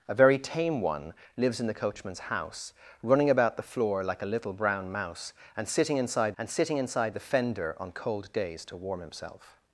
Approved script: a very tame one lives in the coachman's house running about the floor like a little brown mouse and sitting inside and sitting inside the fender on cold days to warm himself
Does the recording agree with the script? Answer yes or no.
yes